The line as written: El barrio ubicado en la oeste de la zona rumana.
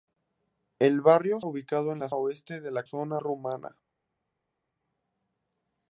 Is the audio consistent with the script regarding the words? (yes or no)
yes